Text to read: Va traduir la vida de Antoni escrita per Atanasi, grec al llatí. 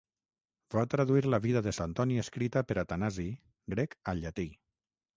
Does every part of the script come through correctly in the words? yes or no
yes